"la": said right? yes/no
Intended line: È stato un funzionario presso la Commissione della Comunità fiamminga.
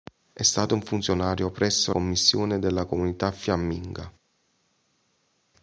no